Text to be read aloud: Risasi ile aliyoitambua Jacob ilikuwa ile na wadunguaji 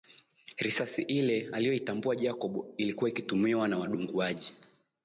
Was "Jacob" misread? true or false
false